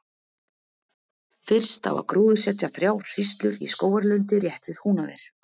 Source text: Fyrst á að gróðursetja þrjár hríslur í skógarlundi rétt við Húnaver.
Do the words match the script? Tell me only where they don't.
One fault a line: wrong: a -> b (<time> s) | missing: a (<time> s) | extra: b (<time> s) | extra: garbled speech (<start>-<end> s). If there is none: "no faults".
no faults